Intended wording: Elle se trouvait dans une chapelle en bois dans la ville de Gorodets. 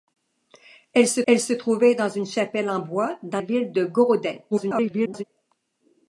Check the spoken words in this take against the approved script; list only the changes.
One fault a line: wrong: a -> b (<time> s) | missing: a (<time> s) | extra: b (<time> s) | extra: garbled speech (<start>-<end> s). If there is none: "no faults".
extra: elle se (1.3 s)
missing: la (3.4 s)
extra: garbled speech (4.5-5.2 s)